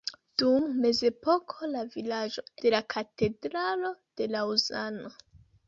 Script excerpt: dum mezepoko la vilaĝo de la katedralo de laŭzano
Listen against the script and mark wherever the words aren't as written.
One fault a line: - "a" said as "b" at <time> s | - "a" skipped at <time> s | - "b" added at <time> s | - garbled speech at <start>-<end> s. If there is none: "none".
none